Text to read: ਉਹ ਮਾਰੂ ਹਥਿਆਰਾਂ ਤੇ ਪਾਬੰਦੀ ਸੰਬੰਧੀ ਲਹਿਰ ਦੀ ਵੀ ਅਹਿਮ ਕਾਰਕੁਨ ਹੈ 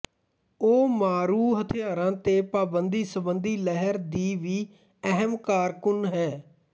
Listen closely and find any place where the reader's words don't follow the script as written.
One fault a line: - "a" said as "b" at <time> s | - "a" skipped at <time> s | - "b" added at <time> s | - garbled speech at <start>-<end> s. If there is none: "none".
none